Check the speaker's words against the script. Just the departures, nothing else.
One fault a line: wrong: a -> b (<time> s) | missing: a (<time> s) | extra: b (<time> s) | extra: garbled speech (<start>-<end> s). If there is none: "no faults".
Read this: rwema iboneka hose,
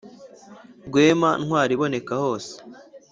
extra: ntwari (1.4 s)